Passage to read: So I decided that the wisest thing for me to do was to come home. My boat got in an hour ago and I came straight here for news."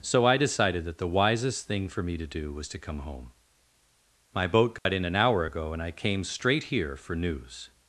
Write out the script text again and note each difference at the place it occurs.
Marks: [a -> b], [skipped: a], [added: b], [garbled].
So I decided that the wisest thing for me to do was to come home. My boat got in an hour ago and I came straight here for news."